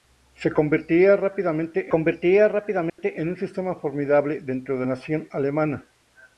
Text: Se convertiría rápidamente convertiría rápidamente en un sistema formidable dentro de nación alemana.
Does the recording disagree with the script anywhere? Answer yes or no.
no